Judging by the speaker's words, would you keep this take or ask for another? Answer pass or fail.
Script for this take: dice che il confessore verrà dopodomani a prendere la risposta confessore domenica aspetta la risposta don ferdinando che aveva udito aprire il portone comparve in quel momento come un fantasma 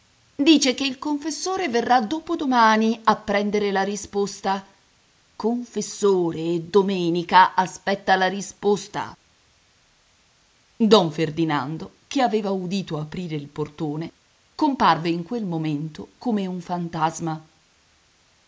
pass